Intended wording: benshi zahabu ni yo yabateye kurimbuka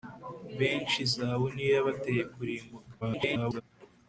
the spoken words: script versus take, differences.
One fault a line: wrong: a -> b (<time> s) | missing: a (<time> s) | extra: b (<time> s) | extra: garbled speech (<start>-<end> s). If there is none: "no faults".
extra: garbled speech (3.0-3.6 s)